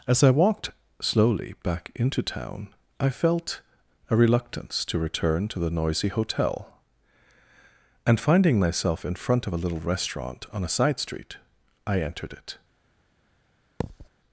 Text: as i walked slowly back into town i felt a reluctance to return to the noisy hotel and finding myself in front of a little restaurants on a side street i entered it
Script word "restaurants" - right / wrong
wrong